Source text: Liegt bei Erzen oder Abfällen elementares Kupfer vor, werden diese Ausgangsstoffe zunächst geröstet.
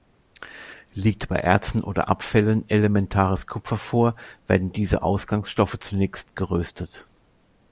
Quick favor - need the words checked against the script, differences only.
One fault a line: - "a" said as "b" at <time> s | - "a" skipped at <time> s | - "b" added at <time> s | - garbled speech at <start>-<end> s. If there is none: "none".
none